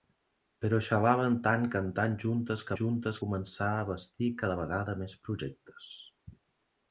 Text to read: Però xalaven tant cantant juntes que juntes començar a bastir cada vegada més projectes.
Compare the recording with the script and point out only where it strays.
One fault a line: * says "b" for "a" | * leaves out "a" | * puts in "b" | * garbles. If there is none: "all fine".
all fine